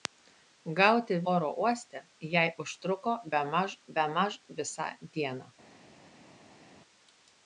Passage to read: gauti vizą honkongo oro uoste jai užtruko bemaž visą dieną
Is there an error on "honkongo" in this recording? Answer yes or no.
yes